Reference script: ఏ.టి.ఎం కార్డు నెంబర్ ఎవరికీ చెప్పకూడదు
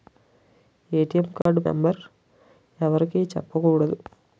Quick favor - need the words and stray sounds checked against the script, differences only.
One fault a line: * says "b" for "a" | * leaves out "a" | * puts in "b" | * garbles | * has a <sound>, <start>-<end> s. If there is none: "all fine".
* has a dropout, 1.4-1.5 s